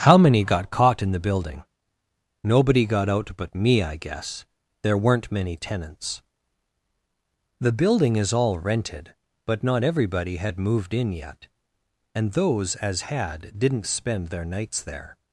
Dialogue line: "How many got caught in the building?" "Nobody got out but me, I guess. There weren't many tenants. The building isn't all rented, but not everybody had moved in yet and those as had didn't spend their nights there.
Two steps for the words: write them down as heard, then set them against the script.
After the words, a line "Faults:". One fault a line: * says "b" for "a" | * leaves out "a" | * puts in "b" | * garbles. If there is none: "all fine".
"How many got caught in the building?" "Nobody got out but me, I guess. There weren't many tenants. The building is all rented, but not everybody had moved in yet and those as had didn't spend their nights there.
Faults:
* says "is" for "isn't"